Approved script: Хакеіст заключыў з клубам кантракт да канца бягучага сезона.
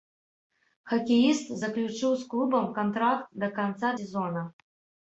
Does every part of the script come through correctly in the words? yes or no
no